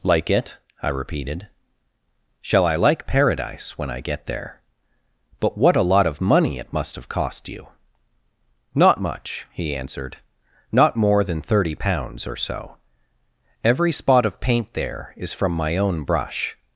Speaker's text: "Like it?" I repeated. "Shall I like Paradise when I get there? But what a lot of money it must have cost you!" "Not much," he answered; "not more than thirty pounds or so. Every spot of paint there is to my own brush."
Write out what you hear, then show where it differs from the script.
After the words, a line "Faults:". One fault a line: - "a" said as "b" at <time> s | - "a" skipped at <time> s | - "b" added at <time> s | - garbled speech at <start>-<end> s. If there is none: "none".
"Like it?" I repeated. "Shall I like Paradise when I get there? But what a lot of money it must have cost you!" "Not much," he answered; "not more than thirty pounds or so. Every spot of paint there is from my own brush."
Faults:
- "to" said as "from" at 15.3 s